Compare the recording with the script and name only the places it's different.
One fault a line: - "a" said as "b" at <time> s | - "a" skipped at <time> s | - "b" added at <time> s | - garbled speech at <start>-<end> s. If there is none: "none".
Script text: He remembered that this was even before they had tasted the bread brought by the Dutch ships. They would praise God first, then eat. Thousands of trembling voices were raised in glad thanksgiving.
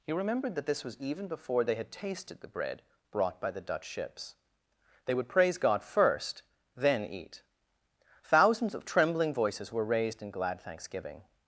none